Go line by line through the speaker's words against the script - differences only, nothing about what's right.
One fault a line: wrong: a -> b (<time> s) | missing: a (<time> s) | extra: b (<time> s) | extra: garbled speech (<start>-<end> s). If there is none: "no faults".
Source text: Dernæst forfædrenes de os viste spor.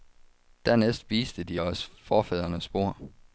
wrong: forfædrenes -> viste (1.1 s)
wrong: viste -> forfædrenes (2.0 s)